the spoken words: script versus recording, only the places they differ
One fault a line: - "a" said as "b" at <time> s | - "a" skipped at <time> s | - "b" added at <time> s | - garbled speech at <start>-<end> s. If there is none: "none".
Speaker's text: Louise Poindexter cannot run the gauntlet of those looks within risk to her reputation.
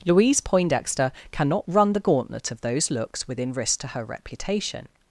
none